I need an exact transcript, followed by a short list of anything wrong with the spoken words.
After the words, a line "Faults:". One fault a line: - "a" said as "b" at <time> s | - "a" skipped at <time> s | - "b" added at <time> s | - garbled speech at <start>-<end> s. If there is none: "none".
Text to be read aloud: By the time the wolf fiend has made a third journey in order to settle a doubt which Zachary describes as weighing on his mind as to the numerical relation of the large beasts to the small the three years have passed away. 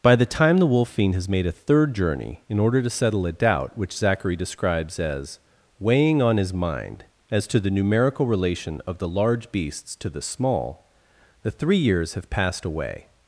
By the time the wolf fiend has made a third journey in order to settle a doubt which Zachary describes as weighing on his mind as to the numerical relation of the large beasts to the small the three years have passed away.
Faults:
none